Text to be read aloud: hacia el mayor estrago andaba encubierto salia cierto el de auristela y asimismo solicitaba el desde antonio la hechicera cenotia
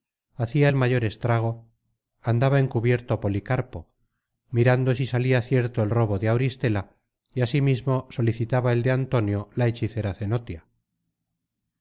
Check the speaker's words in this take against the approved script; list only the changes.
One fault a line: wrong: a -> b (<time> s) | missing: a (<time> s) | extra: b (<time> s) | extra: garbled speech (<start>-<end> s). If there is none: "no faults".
extra: policarpo mirando si (3.2 s)
extra: robo (5.9 s)
wrong: desde -> de (8.8 s)